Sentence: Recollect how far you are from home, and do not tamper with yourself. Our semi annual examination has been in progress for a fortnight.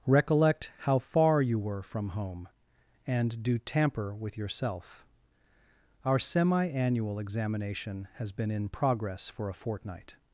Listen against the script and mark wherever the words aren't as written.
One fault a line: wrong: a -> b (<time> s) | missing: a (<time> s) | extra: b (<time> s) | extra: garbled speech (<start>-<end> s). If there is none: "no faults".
wrong: are -> were (1.6 s)
missing: not (3.6 s)